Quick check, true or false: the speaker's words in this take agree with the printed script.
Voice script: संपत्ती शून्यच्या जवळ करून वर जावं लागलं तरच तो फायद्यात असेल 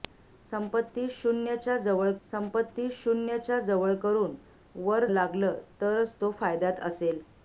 false